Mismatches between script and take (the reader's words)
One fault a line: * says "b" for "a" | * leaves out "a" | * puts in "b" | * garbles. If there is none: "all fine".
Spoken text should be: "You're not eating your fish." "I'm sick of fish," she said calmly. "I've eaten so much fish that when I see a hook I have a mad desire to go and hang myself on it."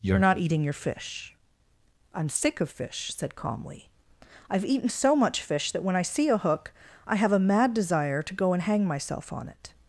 * leaves out "she"